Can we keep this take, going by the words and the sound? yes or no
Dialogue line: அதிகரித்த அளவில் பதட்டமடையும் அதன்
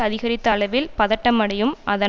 yes